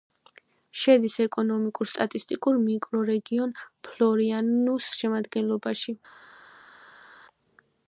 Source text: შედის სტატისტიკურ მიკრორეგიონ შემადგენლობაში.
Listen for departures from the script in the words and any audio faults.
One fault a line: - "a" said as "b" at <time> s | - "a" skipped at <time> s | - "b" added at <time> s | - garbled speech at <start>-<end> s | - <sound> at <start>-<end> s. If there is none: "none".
- "ეკონომიკურ" added at 1.2 s
- "ფლორიანუს" added at 3.9 s